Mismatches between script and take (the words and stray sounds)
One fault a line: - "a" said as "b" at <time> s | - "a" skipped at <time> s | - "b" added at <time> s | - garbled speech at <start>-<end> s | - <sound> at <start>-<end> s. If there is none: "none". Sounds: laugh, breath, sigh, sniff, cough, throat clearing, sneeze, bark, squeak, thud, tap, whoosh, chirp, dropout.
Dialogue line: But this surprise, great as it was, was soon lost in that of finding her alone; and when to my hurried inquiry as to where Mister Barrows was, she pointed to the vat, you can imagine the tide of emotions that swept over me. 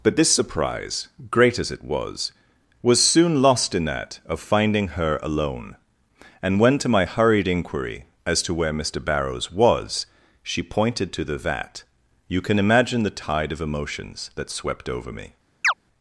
- chirp at 15.6-15.7 s